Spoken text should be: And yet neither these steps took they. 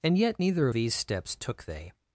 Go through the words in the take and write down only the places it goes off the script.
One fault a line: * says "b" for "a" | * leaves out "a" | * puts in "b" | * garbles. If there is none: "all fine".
all fine